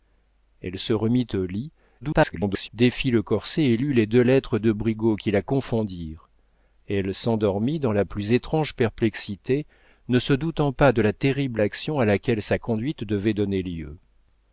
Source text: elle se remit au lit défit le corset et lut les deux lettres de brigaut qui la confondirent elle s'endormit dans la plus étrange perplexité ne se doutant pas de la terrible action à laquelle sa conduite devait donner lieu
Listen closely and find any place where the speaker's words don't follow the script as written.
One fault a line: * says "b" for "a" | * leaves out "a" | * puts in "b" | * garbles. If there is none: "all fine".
* garbles